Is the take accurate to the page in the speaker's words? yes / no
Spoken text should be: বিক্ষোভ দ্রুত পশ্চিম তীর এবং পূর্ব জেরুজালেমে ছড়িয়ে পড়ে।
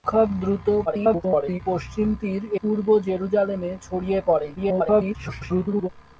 no